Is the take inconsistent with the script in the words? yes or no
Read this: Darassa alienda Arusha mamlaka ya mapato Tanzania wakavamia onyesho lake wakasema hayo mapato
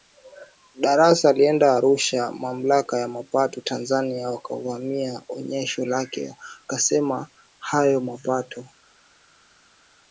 no